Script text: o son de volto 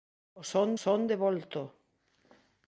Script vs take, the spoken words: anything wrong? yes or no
yes